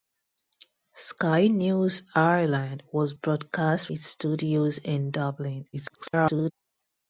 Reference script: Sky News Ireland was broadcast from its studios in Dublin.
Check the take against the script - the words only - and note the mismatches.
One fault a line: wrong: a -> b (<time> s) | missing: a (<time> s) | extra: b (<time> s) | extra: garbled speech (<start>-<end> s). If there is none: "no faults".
missing: from (3.9 s)
extra: garbled speech (5.7-6.5 s)